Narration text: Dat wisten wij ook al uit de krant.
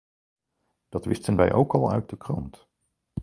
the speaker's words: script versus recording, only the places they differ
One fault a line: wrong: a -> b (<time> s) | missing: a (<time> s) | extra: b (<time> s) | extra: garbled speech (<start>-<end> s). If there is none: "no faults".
no faults